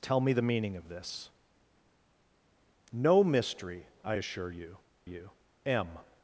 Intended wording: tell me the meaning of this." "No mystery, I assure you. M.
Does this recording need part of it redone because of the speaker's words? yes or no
yes